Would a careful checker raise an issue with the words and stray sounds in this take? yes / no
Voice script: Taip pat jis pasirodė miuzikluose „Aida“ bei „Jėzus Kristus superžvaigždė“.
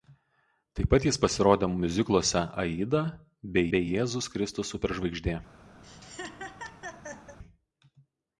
yes